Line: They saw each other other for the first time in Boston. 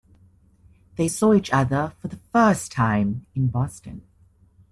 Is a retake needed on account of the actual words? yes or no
yes